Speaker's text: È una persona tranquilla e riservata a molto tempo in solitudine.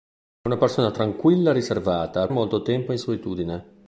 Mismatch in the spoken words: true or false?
false